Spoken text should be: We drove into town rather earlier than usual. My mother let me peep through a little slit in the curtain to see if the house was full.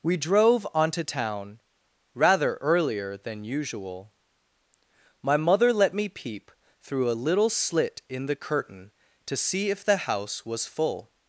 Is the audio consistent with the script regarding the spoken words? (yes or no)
no